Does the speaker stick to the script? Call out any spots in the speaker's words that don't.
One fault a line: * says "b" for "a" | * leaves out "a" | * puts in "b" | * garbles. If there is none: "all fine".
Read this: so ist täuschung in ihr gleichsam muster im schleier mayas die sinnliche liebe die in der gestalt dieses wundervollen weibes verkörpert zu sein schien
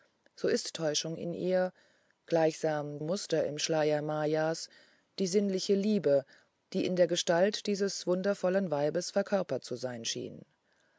all fine